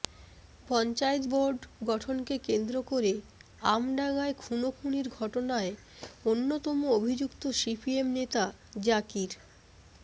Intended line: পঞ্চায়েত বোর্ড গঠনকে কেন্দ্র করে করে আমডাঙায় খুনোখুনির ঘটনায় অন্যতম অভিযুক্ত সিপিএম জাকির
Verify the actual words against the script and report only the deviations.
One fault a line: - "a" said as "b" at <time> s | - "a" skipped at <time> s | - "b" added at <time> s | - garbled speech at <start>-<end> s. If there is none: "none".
- "করে" skipped at 3.1 s
- "নেতা" added at 8.2 s